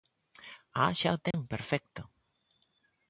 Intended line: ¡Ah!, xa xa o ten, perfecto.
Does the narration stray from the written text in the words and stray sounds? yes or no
yes